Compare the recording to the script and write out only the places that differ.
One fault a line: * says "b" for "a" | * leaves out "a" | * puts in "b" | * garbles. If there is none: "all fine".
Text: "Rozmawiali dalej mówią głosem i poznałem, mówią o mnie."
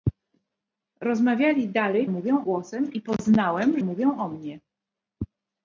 all fine